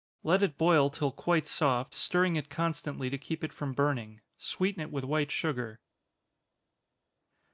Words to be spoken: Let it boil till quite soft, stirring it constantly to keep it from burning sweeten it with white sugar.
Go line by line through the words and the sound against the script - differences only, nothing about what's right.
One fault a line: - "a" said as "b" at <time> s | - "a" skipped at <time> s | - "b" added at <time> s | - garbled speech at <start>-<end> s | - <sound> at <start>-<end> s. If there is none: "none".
none